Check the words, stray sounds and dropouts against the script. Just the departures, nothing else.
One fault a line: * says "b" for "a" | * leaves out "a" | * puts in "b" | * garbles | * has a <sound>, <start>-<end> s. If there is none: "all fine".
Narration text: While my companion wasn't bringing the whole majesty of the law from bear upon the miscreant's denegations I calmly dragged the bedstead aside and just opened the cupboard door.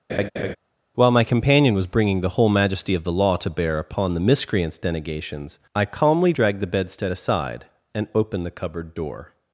* has a laugh, 0.1-0.6 s
* says "was" for "wasn't"
* says "to" for "from"
* leaves out "just"